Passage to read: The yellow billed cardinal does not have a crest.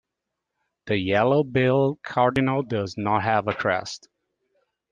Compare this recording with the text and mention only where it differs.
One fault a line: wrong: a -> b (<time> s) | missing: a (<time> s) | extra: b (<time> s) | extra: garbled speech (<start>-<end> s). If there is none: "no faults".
no faults